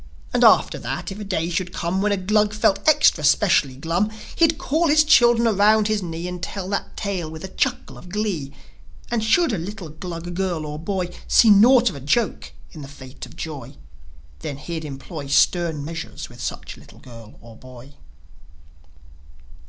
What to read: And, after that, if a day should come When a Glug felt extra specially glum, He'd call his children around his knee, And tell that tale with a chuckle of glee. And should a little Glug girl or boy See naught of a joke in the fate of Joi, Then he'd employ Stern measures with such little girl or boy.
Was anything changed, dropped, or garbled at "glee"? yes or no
no